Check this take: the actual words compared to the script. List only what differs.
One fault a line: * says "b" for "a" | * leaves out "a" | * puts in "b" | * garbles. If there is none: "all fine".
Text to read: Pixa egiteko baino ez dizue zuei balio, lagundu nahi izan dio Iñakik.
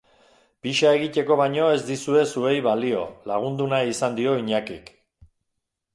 all fine